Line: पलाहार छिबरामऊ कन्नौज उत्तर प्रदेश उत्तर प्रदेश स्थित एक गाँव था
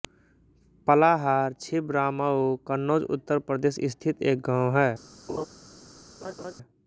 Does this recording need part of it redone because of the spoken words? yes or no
yes